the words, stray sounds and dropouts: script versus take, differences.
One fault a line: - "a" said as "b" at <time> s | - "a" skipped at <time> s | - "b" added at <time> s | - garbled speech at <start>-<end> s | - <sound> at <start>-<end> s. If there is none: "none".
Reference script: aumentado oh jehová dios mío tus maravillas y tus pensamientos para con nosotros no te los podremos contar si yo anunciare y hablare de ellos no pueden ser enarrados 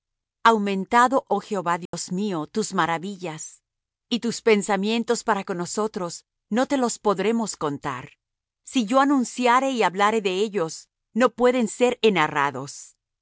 - dropout at 1.9-1.9 s